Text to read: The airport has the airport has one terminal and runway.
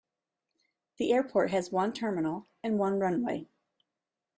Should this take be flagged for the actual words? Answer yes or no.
yes